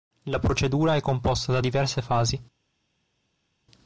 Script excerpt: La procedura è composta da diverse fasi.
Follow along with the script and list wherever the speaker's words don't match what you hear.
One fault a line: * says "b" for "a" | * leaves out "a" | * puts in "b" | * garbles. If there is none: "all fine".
all fine